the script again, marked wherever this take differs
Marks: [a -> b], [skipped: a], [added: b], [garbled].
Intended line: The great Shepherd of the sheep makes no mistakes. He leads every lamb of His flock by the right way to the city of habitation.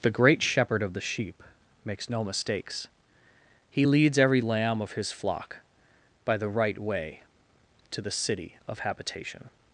The great Shepherd of the sheep makes no mistakes. He leads every lamb of His flock by the right way to the city of habitation.